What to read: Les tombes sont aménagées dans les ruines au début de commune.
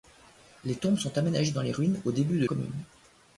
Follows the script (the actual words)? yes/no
yes